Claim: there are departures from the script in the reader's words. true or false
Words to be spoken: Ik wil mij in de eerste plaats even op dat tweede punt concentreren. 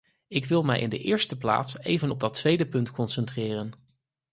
false